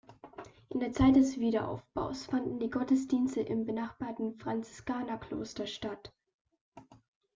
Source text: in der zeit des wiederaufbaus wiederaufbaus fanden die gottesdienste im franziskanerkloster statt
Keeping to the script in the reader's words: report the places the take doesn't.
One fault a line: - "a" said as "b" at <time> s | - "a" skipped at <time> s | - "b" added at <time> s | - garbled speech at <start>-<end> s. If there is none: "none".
- "wiederaufbaus" skipped at 2.3 s
- "benachbarten" added at 3.6 s